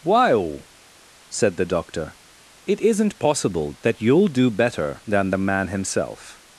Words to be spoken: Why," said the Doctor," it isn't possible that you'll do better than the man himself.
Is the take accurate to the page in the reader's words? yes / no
yes